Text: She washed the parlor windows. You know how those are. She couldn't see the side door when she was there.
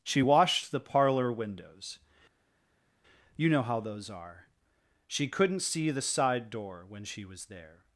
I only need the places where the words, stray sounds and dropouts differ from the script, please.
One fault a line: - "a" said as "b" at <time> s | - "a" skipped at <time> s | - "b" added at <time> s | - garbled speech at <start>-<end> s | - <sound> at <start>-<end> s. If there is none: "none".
none